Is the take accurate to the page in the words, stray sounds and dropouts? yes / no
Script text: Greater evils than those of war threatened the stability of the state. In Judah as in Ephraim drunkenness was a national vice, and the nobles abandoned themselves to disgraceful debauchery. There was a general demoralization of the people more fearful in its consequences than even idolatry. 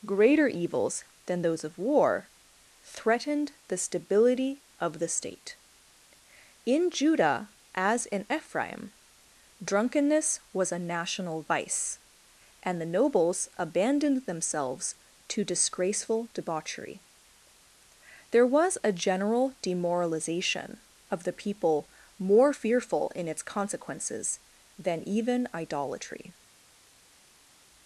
yes